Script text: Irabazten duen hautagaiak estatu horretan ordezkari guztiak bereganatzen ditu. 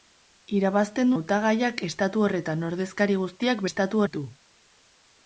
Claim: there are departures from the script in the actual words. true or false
true